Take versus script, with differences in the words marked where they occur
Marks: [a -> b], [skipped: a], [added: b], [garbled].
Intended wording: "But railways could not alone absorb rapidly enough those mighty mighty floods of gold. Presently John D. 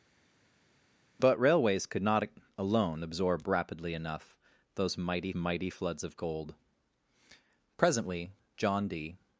"But railways could not alone absorb rapidly enough those mighty mighty floods of gold. Presently John D.